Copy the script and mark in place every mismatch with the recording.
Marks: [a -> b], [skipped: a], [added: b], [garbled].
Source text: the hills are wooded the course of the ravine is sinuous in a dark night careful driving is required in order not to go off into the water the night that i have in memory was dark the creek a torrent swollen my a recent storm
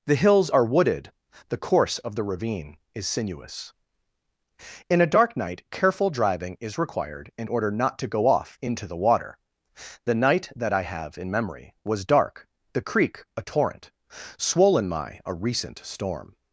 the hills are wooded the course of the ravine is sinuous in a dark night careful driving is required in order not to go off into the water the night that i have in memory was dark the creek a torrent swollen my a recent storm